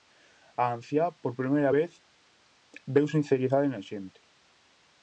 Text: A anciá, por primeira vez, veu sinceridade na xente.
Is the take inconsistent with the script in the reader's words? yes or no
no